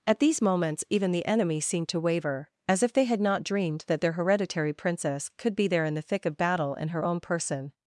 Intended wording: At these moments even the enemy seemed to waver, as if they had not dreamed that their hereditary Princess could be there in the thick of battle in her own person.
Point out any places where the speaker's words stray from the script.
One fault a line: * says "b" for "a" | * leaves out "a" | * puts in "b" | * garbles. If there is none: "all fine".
all fine